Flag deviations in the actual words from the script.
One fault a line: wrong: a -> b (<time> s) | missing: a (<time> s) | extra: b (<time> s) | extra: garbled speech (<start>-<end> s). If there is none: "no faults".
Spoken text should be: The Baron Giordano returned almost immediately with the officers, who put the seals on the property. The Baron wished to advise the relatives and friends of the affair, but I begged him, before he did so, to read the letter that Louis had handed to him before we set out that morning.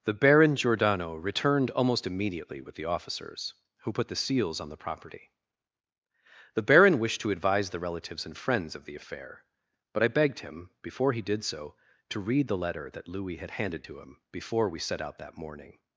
no faults